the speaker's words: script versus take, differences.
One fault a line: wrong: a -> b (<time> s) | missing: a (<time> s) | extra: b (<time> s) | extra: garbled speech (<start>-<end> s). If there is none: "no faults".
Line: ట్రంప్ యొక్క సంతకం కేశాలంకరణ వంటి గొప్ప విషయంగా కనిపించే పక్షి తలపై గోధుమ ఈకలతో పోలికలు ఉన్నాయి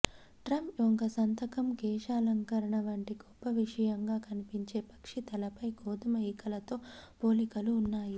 no faults